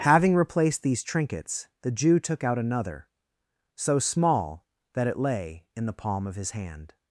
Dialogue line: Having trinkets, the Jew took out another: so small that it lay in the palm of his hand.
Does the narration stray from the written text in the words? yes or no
yes